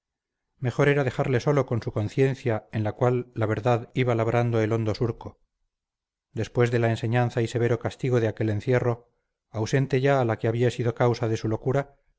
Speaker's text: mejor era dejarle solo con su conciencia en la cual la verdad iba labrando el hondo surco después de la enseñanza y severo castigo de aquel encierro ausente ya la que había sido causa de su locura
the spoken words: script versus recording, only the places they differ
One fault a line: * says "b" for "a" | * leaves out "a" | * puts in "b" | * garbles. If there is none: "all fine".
all fine